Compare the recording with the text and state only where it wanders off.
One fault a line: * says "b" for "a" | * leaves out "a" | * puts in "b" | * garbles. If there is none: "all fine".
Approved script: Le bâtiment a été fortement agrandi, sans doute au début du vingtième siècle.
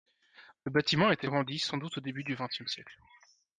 * leaves out "fortement"